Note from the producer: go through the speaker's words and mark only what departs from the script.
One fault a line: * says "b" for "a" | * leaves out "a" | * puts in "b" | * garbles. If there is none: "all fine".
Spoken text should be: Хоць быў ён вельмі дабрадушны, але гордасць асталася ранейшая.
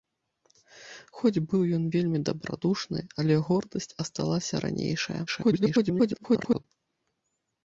* garbles